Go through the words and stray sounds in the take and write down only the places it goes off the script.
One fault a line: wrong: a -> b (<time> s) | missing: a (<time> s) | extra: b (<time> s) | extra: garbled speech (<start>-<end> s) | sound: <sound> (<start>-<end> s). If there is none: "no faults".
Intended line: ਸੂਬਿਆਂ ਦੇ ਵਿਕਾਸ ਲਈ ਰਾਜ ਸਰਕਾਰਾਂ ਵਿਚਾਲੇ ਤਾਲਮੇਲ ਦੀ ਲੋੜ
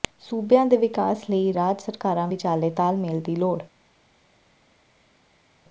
no faults